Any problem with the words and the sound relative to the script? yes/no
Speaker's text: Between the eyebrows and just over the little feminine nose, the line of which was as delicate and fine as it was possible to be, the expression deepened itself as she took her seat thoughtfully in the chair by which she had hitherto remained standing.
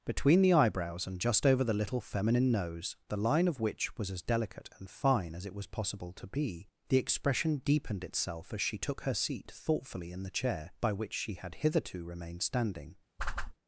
yes